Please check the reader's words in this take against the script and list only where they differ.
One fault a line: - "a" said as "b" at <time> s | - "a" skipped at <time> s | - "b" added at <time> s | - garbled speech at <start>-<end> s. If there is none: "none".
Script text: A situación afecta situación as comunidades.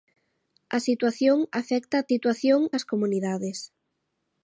none